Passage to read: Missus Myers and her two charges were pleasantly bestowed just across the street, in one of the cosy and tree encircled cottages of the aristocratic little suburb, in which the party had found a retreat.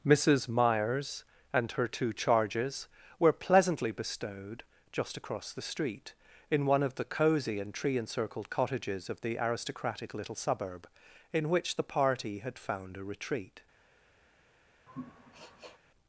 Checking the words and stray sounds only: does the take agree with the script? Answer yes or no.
no